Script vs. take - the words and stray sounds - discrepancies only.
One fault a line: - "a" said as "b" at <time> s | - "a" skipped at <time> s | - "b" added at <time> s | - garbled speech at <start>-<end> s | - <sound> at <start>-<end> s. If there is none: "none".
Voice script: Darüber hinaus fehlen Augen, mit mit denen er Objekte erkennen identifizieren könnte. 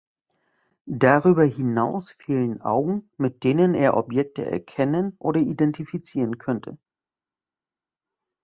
- "mit" skipped at 3.4 s
- "oder" added at 5.2 s